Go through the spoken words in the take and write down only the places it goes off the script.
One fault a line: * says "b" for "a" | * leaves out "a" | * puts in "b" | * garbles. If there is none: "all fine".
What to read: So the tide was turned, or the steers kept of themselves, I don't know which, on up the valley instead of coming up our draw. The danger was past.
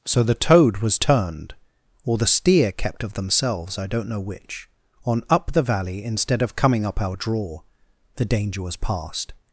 * says "toad" for "tide"
* says "steer" for "steers"